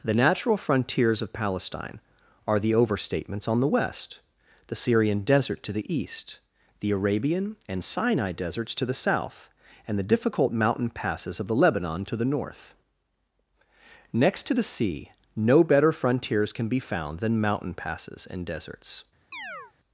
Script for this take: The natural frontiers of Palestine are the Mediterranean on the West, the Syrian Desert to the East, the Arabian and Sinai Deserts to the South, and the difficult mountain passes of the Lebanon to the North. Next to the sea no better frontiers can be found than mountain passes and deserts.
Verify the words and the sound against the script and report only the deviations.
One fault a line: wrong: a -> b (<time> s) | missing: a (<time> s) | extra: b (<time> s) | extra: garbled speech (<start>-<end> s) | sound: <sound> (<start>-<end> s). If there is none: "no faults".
wrong: Mediterranean -> Overstatements (2.7 s)
sound: chirp (19.3-19.7 s)